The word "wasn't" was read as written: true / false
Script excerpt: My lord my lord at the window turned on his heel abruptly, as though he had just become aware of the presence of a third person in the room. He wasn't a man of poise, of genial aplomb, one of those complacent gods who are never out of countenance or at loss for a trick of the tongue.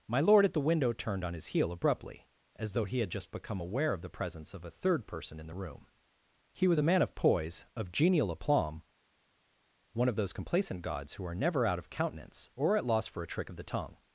false